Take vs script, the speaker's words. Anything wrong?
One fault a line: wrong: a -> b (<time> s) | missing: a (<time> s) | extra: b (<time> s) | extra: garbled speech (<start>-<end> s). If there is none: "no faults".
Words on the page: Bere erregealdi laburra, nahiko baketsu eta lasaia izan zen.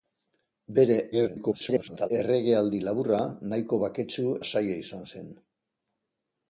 extra: garbled speech (1.1-2.1 s)
missing: eta (4.3 s)